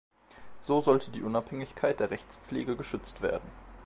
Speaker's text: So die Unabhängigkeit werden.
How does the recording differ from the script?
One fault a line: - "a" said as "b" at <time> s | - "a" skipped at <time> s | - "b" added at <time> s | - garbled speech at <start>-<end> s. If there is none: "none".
- "sollte" added at 0.8 s
- "der Rechtspflege geschützt" added at 2.0 s